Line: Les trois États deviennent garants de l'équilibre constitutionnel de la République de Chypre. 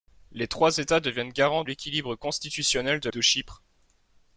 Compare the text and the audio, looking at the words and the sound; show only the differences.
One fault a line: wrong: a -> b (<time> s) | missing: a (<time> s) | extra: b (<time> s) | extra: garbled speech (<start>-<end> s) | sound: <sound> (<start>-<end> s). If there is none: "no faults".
missing: de (1.6 s)
missing: la République (3.1 s)